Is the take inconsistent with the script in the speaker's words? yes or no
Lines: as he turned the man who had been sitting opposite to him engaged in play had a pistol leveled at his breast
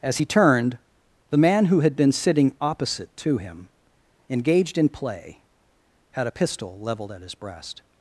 no